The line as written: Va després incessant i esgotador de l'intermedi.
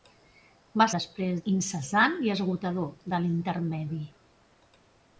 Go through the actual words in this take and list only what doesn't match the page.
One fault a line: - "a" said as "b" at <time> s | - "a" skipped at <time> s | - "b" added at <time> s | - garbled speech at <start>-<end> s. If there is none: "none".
none